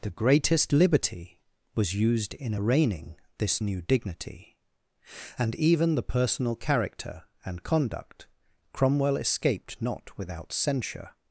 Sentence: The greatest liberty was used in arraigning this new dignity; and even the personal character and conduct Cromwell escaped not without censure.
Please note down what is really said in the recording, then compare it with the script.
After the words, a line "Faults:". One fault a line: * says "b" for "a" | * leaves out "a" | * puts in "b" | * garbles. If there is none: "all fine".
The greatest liberty was used in arraigning this new dignity; and even the personal character and conduct Cromwell escaped not without censure.
Faults:
all fine